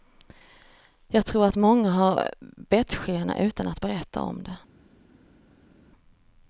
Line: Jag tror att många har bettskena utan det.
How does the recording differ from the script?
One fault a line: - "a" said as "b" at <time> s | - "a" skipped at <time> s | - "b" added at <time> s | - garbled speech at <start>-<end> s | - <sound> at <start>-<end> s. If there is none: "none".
- "att berätta om" added at 3.7 s